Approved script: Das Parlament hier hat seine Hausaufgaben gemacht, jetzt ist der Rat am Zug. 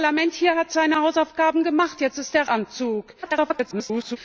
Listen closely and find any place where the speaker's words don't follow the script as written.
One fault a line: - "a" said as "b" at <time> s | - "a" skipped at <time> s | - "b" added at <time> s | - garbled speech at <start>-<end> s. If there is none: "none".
- "Rat" skipped at 2.5 s
- garbled speech at 3.2-4.2 s